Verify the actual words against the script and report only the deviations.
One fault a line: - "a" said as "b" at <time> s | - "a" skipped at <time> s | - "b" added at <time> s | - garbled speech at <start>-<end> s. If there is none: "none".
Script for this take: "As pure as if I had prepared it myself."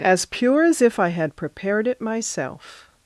none